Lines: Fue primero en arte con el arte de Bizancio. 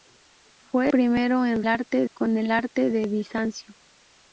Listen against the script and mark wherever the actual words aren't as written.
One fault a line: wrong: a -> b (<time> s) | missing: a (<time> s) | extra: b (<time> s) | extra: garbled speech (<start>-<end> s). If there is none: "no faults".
no faults